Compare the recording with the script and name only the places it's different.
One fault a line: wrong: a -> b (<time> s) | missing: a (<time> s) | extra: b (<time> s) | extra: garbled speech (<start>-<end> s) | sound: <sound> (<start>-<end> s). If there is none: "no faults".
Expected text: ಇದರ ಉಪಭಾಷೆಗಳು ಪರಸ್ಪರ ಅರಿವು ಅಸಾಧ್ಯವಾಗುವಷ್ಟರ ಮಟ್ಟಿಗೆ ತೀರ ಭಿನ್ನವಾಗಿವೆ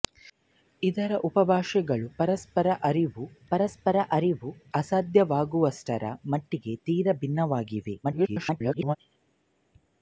extra: ಪರಸ್ಪರ ಅರಿವು (3.5 s)
extra: garbled speech (8.0-9.0 s)